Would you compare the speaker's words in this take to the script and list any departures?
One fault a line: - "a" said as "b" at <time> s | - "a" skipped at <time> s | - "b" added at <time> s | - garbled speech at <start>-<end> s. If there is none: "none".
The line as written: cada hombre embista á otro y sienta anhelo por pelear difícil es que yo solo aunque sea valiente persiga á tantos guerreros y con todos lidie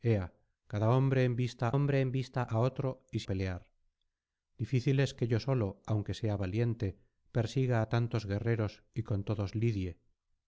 - "hombre embista" added at 1.7 s
- "sienta anhelo por" skipped at 3.2 s